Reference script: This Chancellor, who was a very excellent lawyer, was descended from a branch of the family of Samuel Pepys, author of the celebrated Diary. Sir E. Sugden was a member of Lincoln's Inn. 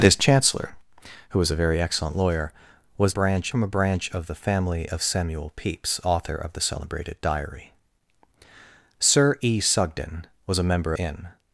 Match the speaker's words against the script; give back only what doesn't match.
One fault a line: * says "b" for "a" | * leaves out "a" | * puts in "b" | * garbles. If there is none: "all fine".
* says "branch" for "descended"
* leaves out "of Lincoln's"